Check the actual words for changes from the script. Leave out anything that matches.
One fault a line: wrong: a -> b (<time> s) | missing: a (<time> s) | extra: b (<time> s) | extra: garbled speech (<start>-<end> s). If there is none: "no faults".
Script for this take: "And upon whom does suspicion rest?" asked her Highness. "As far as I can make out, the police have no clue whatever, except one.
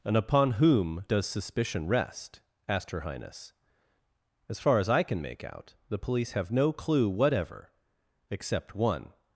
no faults